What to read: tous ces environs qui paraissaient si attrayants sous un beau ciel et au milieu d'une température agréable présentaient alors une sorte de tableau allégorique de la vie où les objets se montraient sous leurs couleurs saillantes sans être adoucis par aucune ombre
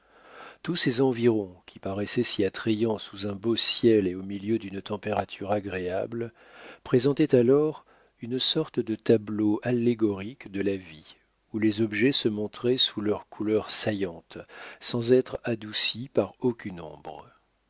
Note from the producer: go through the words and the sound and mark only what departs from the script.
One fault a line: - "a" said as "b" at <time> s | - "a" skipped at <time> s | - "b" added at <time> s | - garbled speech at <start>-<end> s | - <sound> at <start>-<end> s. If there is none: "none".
none